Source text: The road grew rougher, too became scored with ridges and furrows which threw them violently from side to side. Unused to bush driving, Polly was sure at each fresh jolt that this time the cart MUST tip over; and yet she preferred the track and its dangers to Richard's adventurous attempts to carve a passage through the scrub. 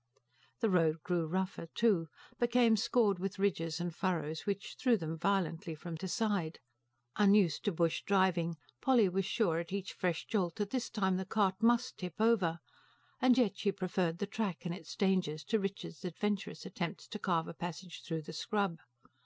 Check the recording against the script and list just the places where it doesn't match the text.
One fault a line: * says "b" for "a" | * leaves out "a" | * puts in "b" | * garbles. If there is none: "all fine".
* leaves out "side"